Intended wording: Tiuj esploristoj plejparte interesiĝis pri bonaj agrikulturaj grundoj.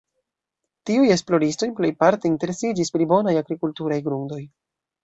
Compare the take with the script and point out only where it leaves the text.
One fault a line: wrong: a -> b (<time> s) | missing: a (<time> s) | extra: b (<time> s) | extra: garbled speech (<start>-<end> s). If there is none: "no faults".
no faults